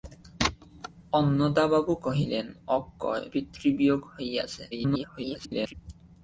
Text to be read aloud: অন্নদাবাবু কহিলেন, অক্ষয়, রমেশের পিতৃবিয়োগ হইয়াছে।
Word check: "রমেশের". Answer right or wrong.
wrong